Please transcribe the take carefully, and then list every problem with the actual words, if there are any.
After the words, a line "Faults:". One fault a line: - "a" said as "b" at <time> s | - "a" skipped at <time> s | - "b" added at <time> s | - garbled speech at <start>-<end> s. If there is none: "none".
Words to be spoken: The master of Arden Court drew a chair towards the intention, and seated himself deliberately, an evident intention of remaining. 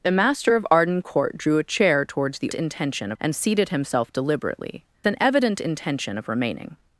The master of Arden Court drew a chair towards the intention, and seated himself deliberately, an evident intention of remaining.
Faults:
none